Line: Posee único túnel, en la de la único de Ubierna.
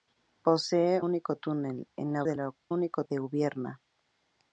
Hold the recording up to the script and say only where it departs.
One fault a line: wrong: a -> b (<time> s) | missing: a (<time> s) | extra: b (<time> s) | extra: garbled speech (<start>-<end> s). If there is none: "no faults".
no faults